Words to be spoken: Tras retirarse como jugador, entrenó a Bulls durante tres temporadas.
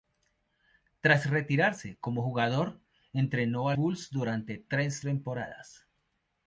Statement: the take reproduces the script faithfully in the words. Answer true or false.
true